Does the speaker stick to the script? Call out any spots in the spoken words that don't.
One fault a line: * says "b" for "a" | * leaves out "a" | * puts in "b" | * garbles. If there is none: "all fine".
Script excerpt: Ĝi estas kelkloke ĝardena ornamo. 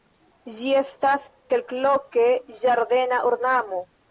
all fine